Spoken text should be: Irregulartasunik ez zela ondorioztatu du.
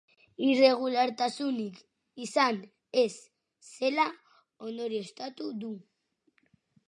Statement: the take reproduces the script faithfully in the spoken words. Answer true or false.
false